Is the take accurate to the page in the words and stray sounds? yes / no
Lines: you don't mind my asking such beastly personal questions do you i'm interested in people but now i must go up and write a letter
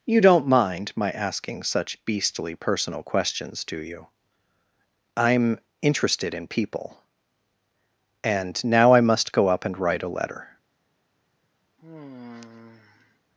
no